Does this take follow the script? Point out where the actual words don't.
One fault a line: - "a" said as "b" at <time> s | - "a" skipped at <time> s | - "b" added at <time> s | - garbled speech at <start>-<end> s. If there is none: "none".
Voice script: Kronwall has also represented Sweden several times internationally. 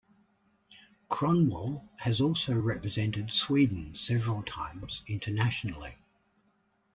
none